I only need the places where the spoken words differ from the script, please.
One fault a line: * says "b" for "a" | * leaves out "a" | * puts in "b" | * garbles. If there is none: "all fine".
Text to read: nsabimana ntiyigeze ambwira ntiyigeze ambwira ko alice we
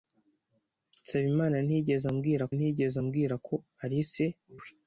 all fine